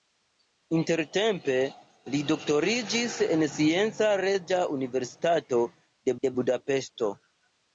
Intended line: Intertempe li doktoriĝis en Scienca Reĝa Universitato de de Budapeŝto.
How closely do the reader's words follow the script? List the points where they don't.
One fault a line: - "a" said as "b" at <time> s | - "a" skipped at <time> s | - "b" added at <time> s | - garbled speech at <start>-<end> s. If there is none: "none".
none